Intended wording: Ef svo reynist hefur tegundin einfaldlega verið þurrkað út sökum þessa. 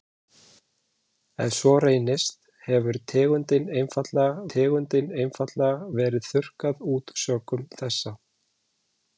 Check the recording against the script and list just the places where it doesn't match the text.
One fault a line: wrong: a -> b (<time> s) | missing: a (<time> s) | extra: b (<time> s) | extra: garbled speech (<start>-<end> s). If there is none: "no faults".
extra: tegundin einfaldlega (4.5 s)